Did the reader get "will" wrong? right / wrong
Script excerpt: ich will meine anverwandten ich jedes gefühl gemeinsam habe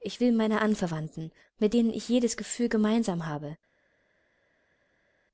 right